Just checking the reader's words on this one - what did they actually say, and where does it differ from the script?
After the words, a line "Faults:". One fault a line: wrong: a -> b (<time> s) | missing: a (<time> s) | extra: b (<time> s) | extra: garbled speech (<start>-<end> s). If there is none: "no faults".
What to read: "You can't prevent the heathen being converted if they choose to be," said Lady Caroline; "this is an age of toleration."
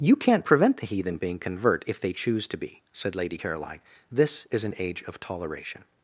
"You can't prevent the heathen being convert if they choose to be," said Lady Caroline; "this is an age of toleration."
Faults:
wrong: converted -> convert (1.4 s)